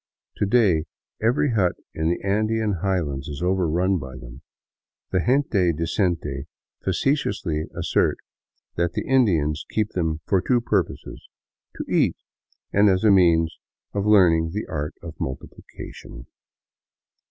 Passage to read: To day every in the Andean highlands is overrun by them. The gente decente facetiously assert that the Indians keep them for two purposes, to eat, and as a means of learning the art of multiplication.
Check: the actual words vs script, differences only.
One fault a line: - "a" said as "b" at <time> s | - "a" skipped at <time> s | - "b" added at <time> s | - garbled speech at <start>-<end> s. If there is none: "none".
- "hut" added at 1.5 s